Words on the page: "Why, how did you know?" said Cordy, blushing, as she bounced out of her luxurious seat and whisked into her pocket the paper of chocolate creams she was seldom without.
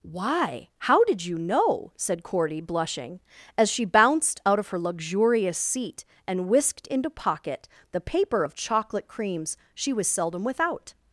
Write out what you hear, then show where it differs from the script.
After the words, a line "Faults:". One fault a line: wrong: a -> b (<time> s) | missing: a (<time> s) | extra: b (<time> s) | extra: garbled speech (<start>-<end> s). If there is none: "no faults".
"Why, how did you know?" said Cordy, blushing, as she bounced out of her luxurious seat and whisked into pocket the paper of chocolate creams she was seldom without.
Faults:
missing: her (7.1 s)